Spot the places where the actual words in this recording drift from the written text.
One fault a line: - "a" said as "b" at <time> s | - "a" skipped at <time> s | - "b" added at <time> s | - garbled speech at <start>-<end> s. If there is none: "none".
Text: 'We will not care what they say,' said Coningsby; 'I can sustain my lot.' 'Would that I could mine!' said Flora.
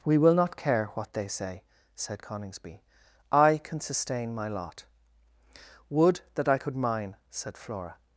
none